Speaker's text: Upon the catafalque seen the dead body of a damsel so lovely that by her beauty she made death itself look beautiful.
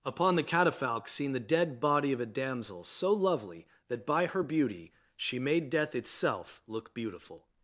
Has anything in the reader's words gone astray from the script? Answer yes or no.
no